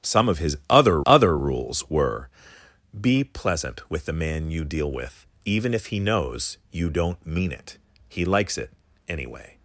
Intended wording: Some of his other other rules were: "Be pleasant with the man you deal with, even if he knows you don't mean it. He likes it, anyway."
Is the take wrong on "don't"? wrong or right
right